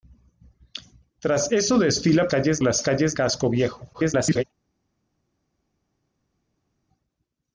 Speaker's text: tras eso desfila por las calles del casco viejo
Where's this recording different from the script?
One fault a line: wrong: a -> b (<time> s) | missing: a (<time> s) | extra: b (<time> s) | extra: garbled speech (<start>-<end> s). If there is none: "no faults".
wrong: por -> calles (2.3 s)
missing: del (3.1 s)
extra: garbled speech (3.9-4.4 s)